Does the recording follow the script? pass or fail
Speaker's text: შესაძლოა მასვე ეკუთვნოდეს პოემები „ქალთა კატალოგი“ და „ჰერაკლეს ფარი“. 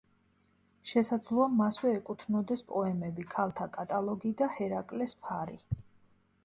pass